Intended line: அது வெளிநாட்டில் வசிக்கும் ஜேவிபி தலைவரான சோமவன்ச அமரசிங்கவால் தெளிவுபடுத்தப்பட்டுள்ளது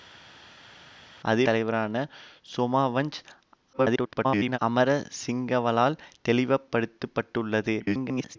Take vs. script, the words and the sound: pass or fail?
fail